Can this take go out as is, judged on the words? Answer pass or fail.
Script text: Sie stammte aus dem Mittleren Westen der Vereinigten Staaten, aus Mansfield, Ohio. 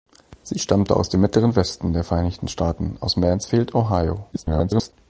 fail